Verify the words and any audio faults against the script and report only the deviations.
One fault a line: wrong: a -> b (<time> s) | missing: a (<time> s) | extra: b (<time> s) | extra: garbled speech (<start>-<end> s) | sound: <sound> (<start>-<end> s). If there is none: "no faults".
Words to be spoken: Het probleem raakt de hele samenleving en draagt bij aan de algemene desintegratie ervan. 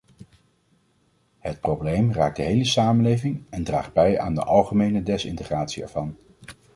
no faults